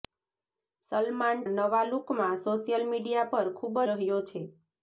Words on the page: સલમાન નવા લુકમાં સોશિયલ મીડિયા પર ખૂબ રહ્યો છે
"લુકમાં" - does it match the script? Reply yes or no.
yes